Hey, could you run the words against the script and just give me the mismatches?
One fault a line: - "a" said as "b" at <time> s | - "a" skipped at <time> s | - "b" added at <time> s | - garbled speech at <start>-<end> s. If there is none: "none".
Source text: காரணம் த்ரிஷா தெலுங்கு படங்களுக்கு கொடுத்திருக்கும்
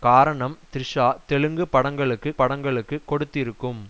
- "படங்களுக்கு" added at 2.4 s